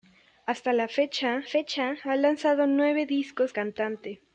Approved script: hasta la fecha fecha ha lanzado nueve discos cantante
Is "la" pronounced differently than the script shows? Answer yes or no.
no